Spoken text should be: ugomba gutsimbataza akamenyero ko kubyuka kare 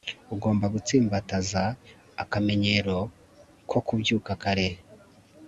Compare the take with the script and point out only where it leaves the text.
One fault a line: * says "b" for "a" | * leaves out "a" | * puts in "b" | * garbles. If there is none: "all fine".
all fine